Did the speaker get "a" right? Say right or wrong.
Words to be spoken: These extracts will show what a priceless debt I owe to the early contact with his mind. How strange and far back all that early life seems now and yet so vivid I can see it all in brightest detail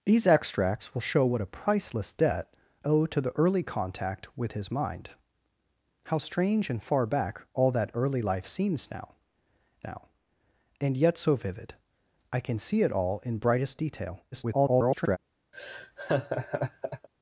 right